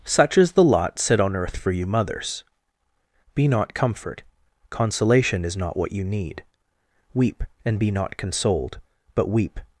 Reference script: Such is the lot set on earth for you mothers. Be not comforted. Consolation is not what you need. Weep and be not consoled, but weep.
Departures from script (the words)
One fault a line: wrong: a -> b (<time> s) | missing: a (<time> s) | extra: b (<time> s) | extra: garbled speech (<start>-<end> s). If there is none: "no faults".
wrong: comforted -> comfort (3.7 s)